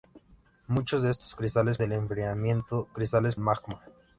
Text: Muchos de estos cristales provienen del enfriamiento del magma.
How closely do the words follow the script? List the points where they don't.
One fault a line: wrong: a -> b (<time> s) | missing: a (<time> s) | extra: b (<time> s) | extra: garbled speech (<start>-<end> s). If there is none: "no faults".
missing: provienen (1.8 s)
wrong: del -> cristales (2.9 s)